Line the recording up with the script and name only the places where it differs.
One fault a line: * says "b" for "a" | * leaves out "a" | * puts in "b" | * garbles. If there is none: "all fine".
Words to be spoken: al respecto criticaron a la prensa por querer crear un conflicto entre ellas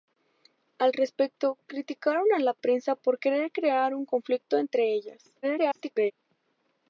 * garbles